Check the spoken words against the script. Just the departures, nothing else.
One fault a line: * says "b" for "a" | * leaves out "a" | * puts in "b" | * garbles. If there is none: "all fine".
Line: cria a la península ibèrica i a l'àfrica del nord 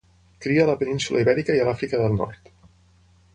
all fine